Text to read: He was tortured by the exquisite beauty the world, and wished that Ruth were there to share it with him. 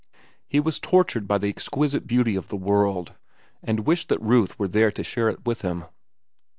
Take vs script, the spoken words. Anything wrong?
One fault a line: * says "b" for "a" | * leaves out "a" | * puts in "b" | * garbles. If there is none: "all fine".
* puts in "of"